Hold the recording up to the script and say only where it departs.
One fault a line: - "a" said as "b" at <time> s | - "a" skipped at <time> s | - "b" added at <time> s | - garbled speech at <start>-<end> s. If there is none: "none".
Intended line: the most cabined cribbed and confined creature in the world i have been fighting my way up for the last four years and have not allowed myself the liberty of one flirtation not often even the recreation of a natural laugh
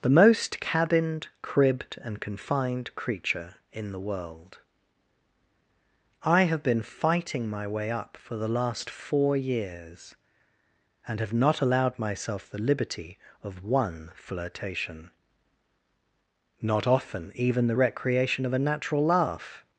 none